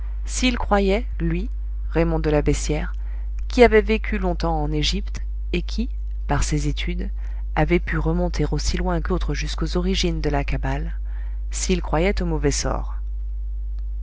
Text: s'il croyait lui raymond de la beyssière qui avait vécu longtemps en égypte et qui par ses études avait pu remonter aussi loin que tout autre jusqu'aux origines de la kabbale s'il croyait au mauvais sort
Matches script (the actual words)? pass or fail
fail